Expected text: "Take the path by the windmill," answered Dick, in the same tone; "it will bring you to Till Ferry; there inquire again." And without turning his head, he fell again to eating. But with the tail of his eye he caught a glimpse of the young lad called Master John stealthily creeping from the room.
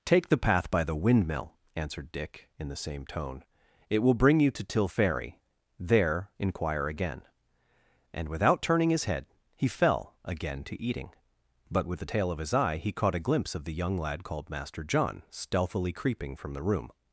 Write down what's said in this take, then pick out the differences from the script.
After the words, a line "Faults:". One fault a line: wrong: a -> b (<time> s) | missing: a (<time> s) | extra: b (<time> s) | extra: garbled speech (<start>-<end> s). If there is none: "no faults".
"Take the path by the windmill," answered Dick, in the same tone; "it will bring you to Till Ferry; there inquire again." And without turning his head, he fell again to eating. But with the tail of his eye he caught a glimpse of the young lad called Master John stealthily creeping from the room.
Faults:
no faults